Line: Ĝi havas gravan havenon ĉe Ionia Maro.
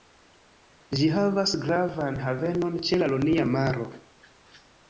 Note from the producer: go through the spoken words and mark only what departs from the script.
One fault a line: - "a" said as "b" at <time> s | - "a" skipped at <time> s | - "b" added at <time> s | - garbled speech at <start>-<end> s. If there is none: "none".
- "la" added at 3.0 s